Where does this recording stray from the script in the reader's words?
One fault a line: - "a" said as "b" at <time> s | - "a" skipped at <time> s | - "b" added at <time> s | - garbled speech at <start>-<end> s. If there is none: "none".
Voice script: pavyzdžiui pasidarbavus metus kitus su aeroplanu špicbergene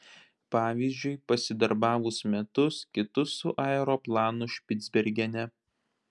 none